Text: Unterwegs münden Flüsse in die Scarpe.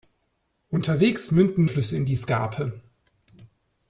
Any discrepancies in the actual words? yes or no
no